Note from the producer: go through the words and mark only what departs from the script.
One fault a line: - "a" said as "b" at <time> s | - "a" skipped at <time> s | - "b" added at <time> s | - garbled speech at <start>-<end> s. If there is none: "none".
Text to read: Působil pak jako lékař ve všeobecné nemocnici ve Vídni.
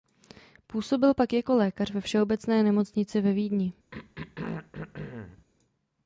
none